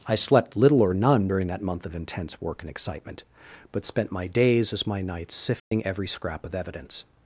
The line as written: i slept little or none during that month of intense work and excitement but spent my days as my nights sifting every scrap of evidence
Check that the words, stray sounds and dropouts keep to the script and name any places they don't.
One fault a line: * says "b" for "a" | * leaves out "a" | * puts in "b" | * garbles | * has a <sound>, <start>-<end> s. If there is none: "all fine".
* has a dropout, 5.6-5.7 s